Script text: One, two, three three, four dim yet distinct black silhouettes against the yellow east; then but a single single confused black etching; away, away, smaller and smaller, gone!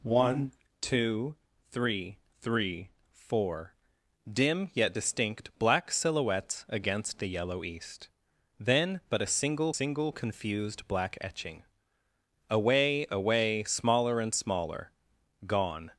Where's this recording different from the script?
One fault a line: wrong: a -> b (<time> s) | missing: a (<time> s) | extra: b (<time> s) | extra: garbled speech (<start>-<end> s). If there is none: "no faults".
no faults